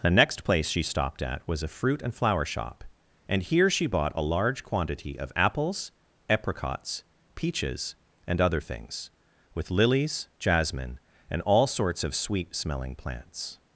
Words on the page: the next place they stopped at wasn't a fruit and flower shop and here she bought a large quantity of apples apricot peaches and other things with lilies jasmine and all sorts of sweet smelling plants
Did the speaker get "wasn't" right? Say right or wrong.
wrong